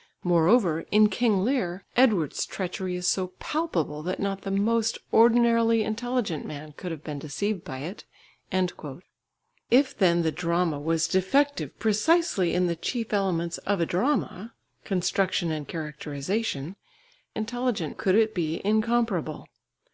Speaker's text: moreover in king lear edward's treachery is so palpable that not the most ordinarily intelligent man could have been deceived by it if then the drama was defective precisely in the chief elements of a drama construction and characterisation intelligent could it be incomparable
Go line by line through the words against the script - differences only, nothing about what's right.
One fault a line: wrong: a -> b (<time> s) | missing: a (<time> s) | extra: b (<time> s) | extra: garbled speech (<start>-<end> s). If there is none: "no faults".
no faults